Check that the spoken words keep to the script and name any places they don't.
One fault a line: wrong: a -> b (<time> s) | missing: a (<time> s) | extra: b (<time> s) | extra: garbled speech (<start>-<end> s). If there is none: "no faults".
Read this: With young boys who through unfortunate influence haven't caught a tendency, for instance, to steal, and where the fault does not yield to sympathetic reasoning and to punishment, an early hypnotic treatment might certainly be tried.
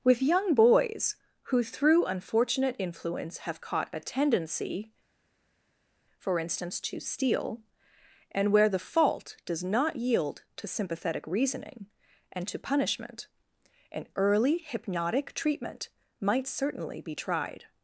wrong: haven't -> have (3.4 s)